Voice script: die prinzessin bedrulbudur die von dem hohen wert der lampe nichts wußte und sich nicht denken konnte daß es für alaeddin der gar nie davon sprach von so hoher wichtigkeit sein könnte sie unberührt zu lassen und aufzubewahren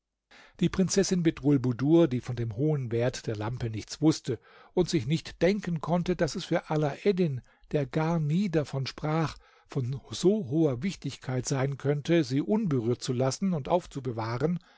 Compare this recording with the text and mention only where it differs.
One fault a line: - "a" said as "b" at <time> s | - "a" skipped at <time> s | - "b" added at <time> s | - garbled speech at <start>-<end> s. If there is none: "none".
none